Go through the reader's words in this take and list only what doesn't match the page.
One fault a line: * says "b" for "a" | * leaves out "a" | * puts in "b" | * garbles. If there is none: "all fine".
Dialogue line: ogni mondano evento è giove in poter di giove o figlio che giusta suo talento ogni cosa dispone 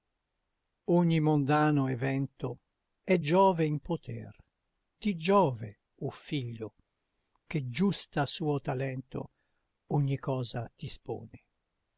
all fine